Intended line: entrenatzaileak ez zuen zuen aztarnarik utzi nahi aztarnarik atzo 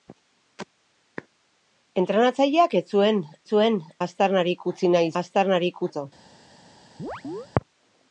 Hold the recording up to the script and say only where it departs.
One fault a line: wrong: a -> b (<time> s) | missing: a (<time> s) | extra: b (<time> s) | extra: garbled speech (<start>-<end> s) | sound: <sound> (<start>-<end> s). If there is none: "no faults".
sound: chirp (7.0-7.5 s)